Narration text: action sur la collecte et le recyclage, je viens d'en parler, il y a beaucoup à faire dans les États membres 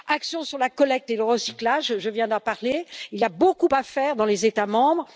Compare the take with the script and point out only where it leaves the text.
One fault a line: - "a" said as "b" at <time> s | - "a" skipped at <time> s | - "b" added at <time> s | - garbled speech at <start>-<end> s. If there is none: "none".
none